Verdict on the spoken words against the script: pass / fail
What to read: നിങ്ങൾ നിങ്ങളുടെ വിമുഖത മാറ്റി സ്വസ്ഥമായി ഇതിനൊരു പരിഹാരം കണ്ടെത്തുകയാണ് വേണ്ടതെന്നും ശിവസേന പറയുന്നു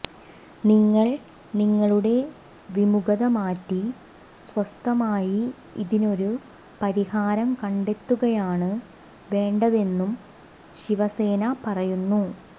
pass